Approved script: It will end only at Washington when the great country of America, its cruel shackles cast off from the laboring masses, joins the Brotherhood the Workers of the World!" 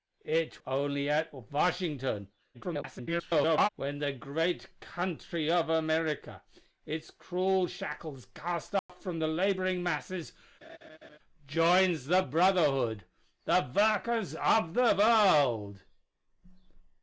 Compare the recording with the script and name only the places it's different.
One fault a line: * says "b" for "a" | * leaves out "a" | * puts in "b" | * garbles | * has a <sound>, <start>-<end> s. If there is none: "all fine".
* leaves out "will end"
* garbles
* has a dropout, 8.8-8.9 s
* has a laugh, 10.6-11.2 s